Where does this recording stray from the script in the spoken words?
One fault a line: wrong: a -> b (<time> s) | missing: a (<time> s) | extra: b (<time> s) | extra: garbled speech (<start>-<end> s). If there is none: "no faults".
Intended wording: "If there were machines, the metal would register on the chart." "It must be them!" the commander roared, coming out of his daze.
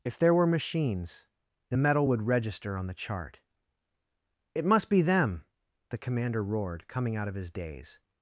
no faults